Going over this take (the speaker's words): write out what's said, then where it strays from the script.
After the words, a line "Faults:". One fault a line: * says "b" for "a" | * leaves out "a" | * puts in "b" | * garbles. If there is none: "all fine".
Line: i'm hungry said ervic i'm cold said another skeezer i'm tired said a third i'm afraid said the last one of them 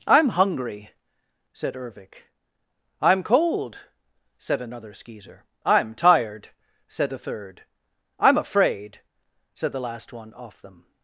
i'm hungry said ervic i'm cold said another skeezer i'm tired said a third i'm afraid said the last one off them
Faults:
* says "off" for "of"